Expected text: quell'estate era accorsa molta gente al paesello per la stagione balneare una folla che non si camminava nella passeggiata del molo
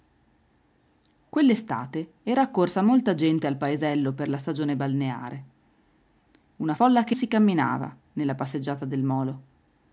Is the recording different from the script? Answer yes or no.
yes